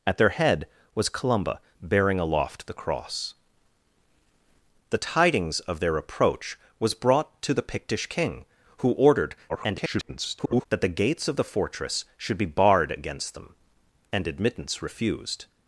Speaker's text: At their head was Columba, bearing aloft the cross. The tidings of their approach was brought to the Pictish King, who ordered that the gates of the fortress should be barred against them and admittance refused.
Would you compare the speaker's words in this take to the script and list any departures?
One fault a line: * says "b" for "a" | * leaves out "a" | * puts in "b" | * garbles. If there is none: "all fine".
* garbles